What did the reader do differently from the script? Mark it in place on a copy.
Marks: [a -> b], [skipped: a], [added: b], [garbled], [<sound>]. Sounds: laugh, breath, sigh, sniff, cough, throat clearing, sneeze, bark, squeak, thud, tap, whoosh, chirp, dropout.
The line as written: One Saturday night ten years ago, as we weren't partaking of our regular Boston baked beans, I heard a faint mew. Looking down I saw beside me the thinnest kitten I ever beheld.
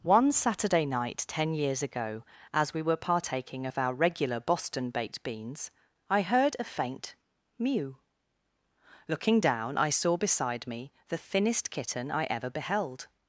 One Saturday night ten years ago, as we [weren't -> were] partaking of our regular Boston baked beans, I heard a faint mew. Looking down I saw beside me the thinnest kitten I ever beheld.